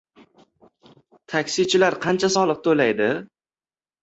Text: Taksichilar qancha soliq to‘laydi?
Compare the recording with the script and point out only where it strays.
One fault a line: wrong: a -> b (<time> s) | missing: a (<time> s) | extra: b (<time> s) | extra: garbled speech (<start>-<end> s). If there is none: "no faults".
no faults